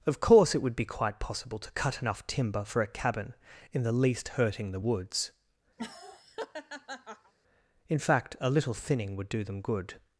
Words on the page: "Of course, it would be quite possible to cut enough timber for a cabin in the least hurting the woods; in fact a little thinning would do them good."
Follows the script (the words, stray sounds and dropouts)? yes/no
no